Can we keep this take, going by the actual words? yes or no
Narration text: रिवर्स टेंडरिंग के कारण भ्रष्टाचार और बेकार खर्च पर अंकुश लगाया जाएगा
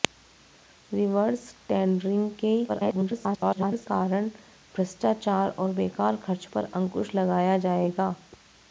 no